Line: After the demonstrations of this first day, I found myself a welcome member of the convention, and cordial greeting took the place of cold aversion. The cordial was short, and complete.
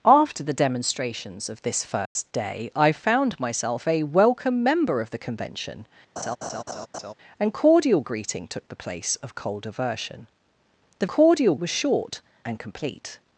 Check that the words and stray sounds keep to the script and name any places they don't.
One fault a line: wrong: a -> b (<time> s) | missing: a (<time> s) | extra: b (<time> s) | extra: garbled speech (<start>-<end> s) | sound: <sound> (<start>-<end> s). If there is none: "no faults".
sound: dropout (2.1-2.2 s)
sound: laugh (6.2-7.1 s)